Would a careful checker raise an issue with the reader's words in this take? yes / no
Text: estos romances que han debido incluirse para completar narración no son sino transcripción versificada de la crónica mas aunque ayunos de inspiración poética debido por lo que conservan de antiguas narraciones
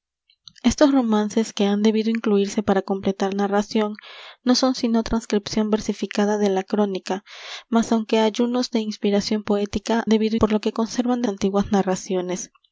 no